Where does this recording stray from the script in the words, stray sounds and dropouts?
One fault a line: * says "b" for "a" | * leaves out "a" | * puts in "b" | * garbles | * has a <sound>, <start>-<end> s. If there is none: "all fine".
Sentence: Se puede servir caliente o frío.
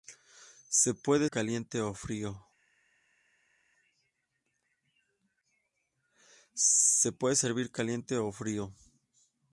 * leaves out "servir"